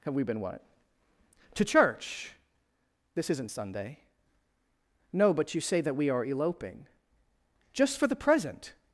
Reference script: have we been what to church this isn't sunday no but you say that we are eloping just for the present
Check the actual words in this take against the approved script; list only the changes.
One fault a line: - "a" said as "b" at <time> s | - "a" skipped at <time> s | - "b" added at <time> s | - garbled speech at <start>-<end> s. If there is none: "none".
none